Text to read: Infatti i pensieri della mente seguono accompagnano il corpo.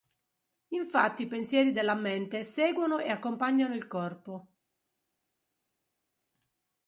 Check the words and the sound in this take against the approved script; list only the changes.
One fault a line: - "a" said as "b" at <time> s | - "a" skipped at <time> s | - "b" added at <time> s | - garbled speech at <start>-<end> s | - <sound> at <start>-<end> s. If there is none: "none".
- "e" added at 3.0 s